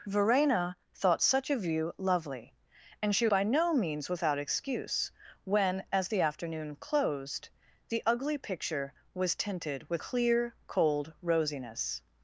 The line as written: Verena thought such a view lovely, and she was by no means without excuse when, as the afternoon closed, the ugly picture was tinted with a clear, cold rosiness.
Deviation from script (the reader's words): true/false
true